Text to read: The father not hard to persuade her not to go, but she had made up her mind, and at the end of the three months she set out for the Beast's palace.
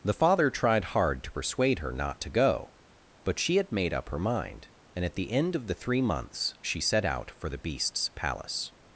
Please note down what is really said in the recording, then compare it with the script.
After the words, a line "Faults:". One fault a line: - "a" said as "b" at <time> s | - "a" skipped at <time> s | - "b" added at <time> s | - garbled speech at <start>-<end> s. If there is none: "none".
The father tried hard to persuade her not to go, but she had made up her mind, and at the end of the three months she set out for the Beast's palace.
Faults:
- "not" said as "tried" at 0.5 s